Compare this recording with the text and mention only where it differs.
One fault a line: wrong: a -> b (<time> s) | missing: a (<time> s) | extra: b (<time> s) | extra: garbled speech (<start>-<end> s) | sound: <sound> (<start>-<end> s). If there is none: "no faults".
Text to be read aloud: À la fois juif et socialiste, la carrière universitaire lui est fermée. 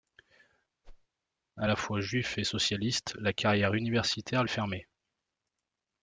sound: whoosh (0.8-1.1 s)
missing: lui (4.4 s)